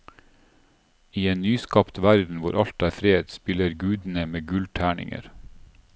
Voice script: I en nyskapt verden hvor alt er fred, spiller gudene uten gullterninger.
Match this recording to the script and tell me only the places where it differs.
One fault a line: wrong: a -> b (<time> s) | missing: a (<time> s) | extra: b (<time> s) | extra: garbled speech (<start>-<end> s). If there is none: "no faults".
wrong: uten -> med (4.3 s)